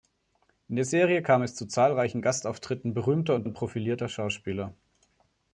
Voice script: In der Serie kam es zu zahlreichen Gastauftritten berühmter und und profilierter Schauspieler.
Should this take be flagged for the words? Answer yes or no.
no